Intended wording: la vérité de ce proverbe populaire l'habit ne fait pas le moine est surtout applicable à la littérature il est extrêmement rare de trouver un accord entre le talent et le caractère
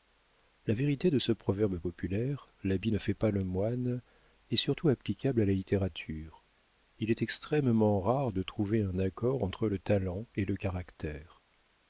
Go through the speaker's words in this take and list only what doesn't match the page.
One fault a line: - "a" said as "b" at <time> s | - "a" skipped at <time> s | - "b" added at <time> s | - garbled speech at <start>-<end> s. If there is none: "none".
none